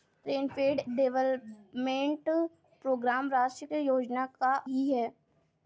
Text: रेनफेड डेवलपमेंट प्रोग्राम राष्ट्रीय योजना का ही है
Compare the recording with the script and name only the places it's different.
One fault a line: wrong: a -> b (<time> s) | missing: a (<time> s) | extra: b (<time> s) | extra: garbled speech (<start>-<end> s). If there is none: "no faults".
no faults